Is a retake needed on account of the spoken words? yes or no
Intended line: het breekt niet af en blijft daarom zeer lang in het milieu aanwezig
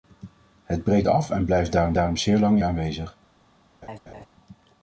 yes